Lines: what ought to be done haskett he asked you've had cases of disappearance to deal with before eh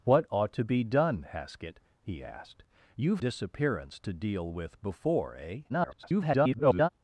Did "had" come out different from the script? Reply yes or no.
yes